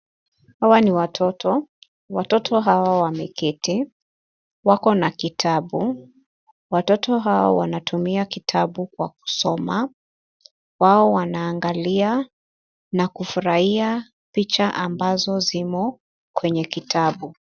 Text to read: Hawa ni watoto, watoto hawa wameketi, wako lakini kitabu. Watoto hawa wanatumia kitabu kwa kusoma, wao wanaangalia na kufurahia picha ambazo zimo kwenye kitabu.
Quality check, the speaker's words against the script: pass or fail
fail